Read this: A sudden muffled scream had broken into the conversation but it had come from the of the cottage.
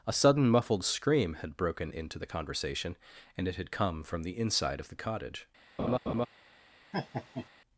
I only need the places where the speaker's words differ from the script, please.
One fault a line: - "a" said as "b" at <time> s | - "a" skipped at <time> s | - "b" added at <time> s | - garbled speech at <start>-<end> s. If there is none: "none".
- "but" said as "and" at 3.4 s
- "inside" added at 4.4 s